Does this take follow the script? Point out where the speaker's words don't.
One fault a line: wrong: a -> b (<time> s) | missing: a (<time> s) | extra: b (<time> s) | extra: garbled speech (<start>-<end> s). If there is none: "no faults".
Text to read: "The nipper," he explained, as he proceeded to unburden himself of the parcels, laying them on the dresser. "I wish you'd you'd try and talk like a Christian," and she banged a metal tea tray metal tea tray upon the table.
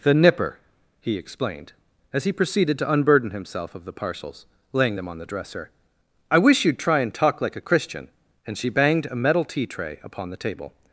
missing: you'd (6.8 s)
missing: metal tea tray (10.0 s)